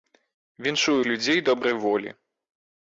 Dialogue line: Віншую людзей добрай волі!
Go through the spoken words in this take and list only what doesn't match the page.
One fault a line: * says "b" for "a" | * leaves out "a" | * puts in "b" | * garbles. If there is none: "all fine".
all fine